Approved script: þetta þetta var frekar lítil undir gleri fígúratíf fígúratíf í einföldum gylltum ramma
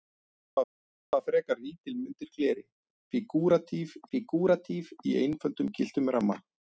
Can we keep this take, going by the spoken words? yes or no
yes